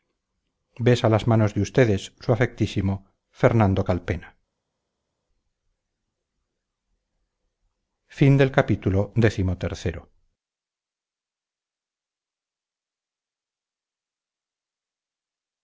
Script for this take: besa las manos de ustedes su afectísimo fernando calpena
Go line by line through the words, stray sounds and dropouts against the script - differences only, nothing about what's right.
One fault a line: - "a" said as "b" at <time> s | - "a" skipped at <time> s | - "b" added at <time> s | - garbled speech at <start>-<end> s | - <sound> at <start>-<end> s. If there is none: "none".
none